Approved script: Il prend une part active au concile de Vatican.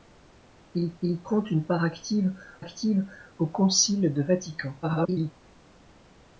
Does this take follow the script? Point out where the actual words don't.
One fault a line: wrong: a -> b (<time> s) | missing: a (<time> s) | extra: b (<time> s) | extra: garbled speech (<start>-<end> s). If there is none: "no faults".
extra: il (1.0 s)
extra: active (2.6 s)
extra: garbled speech (4.8-5.3 s)